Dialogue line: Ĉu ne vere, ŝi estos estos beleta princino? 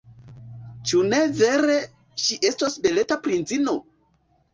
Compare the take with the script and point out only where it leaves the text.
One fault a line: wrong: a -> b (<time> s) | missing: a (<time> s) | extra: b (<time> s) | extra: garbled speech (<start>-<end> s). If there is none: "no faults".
missing: estos (2.8 s)